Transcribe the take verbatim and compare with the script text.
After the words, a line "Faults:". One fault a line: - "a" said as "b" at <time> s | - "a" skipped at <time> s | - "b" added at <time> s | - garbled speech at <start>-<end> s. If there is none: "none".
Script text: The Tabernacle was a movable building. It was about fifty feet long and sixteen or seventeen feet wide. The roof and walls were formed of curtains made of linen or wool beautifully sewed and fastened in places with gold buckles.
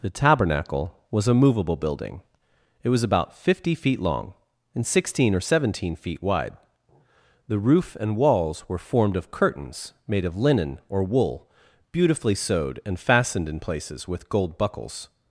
The Tabernacle was a movable building. It was about fifty feet long and sixteen or seventeen feet wide. The roof and walls were formed of curtains made of linen or wool beautifully sewed and fastened in places with gold buckles.
Faults:
none